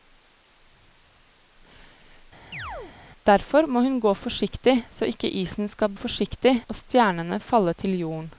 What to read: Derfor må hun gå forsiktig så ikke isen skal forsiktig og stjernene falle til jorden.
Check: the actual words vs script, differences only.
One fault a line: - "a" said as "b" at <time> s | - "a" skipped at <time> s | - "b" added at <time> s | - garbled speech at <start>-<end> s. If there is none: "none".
none